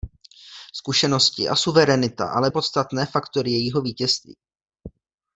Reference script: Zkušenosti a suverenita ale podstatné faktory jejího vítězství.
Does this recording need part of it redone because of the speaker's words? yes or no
no